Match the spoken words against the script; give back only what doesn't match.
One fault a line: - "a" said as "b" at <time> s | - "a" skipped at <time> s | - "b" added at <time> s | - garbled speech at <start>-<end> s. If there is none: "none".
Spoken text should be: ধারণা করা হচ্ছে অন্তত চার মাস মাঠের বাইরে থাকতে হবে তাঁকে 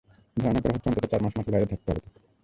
none